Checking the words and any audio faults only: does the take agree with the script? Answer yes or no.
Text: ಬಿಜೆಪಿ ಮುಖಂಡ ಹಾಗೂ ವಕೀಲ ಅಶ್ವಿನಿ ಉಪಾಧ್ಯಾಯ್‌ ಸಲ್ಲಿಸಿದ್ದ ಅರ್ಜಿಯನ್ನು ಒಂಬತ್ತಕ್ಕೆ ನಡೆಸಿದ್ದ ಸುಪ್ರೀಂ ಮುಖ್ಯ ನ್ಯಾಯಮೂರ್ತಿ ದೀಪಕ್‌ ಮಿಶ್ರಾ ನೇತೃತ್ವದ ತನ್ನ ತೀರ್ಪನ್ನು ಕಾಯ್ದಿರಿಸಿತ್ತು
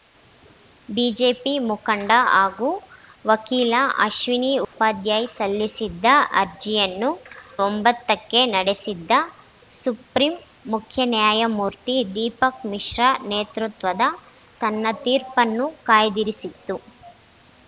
no